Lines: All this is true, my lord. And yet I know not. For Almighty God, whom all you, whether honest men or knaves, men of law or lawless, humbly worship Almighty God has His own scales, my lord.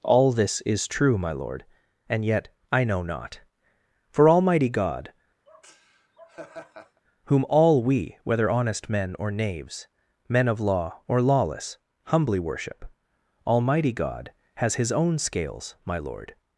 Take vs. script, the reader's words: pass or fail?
fail